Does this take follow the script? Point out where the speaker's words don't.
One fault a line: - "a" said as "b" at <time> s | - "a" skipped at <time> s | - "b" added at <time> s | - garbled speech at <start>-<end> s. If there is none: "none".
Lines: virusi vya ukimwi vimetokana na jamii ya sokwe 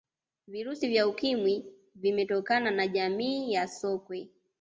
none